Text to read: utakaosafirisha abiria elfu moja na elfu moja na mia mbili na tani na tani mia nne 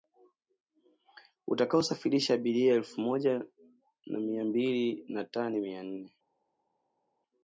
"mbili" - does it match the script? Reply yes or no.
yes